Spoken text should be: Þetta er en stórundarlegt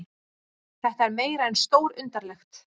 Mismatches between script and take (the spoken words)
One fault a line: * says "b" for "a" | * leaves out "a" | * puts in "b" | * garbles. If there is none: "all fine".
* puts in "meira"